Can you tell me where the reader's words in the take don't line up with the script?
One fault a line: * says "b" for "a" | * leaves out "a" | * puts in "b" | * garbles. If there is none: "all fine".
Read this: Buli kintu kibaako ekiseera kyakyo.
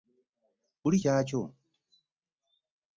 * leaves out "kintu kibaako ekiseera"